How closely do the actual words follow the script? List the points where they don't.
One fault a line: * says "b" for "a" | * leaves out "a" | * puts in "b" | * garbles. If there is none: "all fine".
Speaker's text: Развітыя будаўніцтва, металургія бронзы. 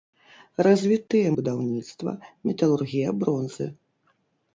all fine